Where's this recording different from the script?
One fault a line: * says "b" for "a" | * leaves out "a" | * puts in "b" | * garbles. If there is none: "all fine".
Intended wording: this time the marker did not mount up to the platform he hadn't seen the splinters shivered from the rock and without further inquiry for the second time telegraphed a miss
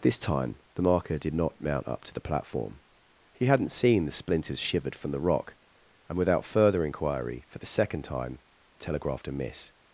all fine